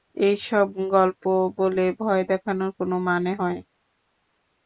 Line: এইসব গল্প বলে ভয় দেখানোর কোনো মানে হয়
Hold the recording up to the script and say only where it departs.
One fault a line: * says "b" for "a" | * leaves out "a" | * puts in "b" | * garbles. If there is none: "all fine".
all fine